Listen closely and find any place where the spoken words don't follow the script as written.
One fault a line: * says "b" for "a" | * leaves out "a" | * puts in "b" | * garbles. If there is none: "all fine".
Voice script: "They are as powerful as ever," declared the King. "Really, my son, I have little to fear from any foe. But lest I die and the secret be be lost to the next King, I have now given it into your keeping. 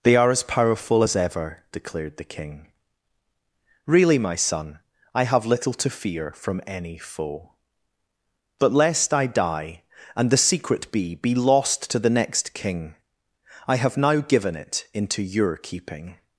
all fine